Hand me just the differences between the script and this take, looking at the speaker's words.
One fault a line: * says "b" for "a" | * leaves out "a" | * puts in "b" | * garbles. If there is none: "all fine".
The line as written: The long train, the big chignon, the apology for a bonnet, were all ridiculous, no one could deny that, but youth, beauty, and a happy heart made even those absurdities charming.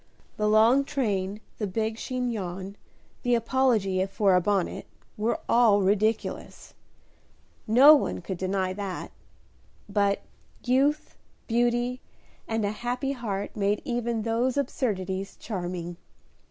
all fine